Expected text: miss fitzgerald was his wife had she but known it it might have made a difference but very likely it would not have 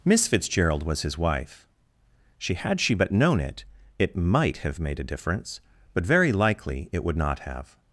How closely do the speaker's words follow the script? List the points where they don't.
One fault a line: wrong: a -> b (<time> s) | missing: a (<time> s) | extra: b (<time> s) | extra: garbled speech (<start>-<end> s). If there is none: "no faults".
extra: she (2.4 s)